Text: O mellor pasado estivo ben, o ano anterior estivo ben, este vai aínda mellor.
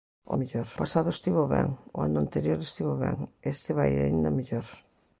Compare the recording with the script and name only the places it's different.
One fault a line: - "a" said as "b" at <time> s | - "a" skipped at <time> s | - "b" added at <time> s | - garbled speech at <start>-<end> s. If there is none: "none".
none